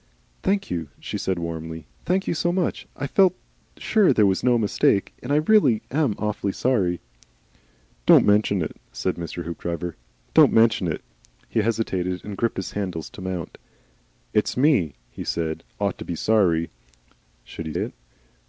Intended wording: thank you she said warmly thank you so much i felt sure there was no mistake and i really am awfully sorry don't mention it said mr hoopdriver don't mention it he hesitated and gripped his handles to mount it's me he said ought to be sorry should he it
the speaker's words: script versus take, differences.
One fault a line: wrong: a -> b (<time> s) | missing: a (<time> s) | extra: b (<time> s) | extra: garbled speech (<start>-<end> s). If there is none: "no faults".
no faults